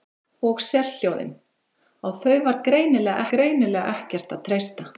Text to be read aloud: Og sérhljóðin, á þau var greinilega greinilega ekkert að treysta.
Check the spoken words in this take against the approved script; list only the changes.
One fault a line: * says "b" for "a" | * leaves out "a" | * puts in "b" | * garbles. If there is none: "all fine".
all fine